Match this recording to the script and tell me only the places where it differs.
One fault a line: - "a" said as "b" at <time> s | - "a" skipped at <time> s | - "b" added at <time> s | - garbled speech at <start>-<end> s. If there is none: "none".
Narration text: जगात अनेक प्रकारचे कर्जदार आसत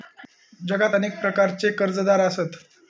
none